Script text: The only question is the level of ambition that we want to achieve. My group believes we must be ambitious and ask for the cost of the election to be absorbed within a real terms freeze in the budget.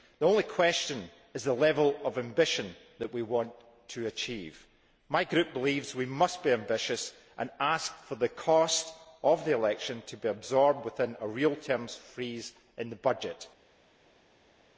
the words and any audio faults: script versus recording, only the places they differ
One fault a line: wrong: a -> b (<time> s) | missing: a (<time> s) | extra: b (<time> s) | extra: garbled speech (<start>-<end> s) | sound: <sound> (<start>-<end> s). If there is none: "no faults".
no faults